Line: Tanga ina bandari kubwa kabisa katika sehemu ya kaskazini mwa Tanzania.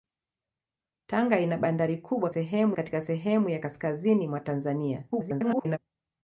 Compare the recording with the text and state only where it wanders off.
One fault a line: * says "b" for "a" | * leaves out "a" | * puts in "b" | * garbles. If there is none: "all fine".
* says "sehemu" for "kabisa"
* garbles